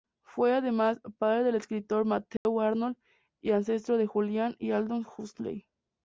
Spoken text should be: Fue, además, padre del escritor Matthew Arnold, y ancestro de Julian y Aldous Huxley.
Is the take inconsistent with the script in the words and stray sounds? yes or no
yes